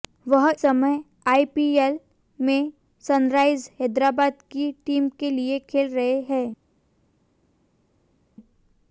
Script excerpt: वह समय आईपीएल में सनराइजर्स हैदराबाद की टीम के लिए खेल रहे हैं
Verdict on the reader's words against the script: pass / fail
pass